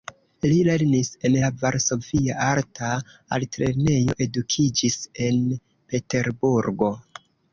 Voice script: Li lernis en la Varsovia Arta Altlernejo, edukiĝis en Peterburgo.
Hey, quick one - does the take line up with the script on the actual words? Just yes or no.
yes